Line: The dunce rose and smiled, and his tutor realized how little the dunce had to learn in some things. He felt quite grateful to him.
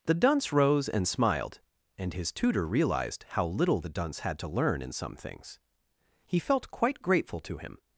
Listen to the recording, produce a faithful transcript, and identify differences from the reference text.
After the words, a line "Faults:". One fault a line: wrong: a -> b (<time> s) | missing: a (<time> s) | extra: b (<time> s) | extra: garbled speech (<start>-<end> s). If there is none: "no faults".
The dunce rose and smiled, and his tutor realized how little the dunce had to learn in some things. He felt quite grateful to him.
Faults:
no faults